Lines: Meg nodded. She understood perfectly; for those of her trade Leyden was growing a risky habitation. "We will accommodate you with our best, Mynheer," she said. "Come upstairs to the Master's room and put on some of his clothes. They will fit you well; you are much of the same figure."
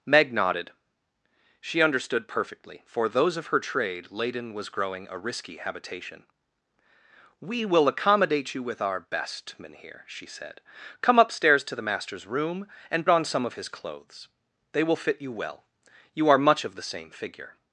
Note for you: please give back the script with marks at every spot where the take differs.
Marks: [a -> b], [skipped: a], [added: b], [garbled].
Meg nodded. She understood perfectly; for those of her trade Leyden was growing a risky habitation. "We will accommodate you with our best, Mynheer," she said. "Come upstairs to the Master's room and [skipped: put] on some of his clothes. They will fit you well; you are much of the same figure."